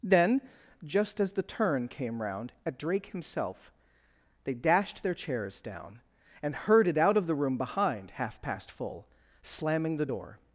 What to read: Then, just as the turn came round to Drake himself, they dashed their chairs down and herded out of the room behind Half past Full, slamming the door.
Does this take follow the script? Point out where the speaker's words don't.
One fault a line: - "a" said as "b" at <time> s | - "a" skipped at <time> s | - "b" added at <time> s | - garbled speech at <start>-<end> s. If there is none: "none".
- "to" said as "at" at 2.6 s